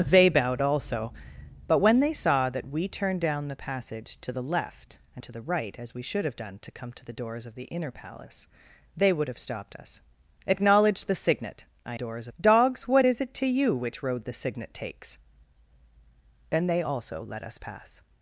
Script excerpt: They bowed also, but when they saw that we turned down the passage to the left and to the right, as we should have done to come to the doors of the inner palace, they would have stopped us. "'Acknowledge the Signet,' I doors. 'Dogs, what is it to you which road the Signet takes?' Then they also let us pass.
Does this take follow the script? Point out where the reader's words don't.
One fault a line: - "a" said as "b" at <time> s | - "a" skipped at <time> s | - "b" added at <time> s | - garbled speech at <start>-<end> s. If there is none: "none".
none